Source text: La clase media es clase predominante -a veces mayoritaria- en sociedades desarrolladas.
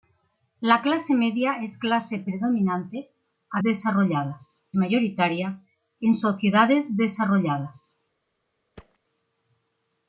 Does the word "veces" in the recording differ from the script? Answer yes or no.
yes